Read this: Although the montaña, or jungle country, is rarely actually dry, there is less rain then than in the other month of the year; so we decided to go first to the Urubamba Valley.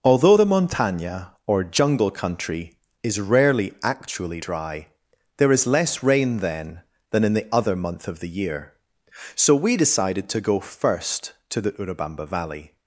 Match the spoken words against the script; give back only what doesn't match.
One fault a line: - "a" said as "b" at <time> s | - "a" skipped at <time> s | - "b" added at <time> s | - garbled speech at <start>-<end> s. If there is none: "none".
none